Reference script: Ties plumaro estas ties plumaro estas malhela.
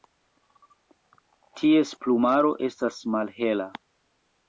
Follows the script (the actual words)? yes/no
no